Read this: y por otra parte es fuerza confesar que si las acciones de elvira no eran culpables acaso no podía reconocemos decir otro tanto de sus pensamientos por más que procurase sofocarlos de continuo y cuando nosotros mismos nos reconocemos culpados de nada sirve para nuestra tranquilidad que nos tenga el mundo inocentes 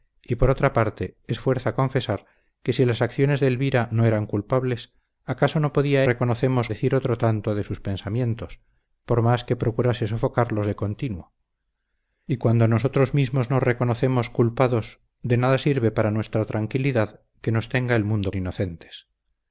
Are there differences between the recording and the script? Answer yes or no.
no